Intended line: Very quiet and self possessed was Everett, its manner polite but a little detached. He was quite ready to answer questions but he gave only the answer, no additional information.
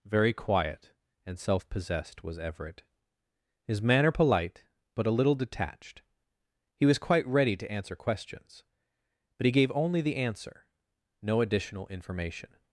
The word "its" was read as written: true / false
false